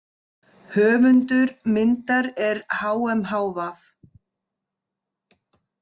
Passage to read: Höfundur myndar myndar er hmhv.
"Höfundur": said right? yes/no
yes